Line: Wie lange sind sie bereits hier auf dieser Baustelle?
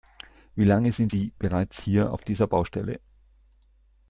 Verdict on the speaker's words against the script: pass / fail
pass